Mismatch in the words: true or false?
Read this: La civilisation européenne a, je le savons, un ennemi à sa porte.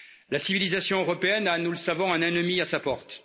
true